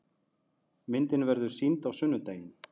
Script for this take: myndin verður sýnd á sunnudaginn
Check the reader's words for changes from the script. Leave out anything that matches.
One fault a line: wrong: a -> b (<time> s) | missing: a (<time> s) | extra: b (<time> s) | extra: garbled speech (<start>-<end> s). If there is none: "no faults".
no faults